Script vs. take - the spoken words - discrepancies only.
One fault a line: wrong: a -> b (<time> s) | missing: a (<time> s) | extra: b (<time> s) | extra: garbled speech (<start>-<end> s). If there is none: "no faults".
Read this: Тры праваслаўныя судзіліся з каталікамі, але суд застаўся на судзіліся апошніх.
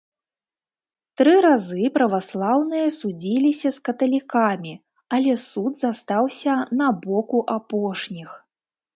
extra: разы (1.4 s)
wrong: судзіліся -> боку (7.1 s)